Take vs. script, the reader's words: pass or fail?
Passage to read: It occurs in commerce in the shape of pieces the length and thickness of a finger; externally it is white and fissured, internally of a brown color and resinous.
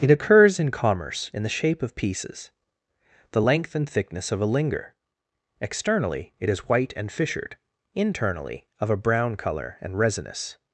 fail